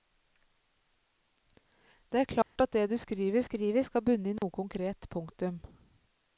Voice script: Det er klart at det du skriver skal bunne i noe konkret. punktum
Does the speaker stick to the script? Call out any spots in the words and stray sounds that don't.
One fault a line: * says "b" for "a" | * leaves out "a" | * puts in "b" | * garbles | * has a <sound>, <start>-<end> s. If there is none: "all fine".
* has a dropout, 2.4-2.6 s
* puts in "skriver"
* has a dropout, 4.4-4.4 s